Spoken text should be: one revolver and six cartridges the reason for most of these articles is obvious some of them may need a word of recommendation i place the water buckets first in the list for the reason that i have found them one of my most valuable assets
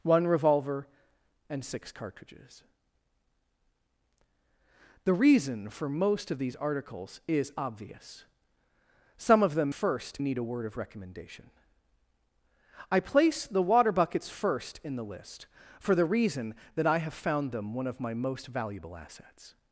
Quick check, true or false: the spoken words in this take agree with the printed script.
false